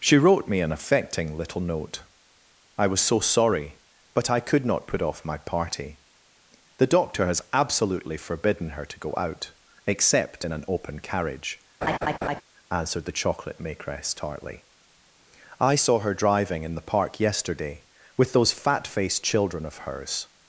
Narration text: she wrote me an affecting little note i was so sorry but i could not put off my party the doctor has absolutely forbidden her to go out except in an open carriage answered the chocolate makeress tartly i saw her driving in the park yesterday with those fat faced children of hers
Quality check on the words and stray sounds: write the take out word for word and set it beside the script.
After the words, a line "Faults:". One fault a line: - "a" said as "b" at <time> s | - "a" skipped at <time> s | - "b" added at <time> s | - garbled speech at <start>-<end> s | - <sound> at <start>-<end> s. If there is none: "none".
she wrote me an affecting little note i was so sorry but i could not put off my party the doctor has absolutely forbidden her to go out except in an open carriage answered the chocolate makeress tartly i saw her driving in the park yesterday with those fat faced children of hers
Faults:
- laugh at 11.8-12.4 s